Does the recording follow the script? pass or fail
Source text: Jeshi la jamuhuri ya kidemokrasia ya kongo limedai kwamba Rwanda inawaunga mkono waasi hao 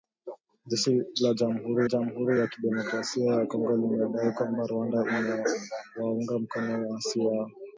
fail